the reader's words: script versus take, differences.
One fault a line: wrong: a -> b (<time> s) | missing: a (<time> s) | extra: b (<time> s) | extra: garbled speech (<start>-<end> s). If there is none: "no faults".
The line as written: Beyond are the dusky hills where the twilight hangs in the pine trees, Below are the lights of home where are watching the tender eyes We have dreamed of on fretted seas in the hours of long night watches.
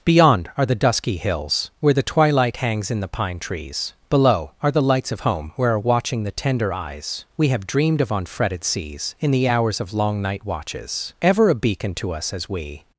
extra: Ever a beacon to us as we (11.2 s)